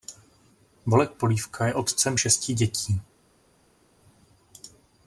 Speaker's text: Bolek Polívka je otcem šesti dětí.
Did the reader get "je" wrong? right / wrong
right